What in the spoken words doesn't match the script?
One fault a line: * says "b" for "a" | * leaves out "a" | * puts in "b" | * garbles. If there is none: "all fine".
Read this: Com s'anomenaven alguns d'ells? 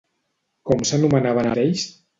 * leaves out "alguns"